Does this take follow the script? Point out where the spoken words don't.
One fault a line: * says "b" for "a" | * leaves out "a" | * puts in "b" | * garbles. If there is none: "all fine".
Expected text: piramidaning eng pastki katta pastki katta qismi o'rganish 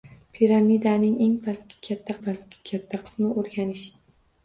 all fine